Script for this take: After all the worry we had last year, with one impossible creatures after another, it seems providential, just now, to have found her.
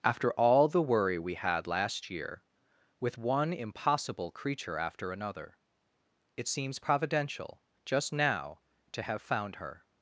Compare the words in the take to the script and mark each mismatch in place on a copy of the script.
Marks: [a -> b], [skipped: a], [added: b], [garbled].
After all the worry we had last year, with one impossible [creatures -> creature] after another, it seems providential, just now, to have found her.